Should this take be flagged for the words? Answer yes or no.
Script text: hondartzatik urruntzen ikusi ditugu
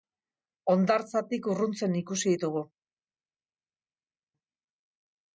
no